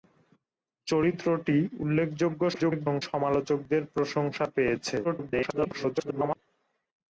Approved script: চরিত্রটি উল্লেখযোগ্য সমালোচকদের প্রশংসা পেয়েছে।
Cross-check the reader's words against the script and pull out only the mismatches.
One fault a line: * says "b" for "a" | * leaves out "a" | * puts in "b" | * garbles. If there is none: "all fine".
* garbles
* garbles